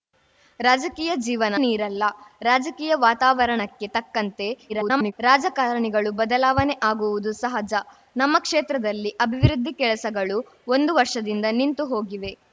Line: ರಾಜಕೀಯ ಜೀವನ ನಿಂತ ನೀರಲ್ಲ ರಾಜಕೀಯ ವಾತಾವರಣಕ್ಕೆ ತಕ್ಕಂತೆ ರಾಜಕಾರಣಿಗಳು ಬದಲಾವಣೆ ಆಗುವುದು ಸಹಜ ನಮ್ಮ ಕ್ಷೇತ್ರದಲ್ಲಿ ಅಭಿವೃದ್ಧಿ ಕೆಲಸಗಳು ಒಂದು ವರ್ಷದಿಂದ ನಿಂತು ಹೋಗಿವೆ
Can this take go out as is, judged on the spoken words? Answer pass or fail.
fail